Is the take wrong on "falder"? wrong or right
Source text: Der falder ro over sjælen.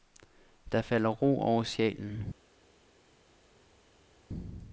right